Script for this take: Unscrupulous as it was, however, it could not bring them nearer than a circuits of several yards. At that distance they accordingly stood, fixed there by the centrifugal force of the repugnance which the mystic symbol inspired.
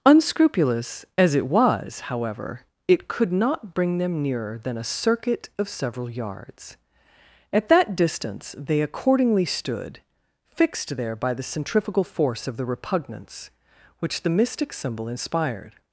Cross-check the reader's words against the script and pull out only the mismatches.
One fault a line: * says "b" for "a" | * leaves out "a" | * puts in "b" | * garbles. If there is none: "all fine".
* says "circuit" for "circuits"